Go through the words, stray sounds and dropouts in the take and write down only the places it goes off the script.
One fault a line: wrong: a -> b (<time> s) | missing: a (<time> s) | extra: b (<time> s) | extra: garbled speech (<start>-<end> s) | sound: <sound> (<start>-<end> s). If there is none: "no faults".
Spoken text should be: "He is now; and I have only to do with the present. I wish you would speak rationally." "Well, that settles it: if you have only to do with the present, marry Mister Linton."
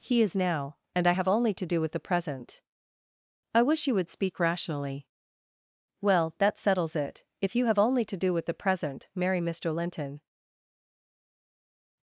no faults